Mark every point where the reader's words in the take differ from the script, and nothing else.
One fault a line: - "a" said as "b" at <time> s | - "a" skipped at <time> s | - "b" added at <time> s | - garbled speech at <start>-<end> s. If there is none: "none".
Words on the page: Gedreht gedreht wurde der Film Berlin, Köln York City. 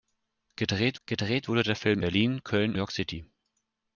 none